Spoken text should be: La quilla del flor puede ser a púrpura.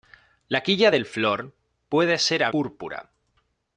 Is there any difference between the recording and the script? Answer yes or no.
no